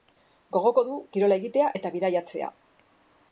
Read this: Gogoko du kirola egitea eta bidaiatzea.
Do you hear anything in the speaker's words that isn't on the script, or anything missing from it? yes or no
no